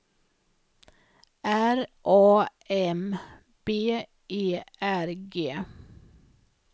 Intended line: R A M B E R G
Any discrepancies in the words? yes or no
no